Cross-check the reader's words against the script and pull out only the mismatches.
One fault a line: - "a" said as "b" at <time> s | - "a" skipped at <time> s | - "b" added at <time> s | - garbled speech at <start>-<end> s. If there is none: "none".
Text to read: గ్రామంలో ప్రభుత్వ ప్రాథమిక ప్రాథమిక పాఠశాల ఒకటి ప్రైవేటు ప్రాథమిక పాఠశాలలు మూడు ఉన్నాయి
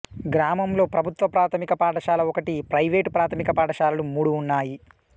- "ప్రాథమిక" skipped at 1.7 s